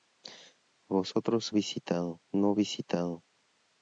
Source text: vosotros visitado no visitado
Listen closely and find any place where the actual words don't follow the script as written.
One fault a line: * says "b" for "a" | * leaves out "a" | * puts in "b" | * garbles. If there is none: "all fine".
all fine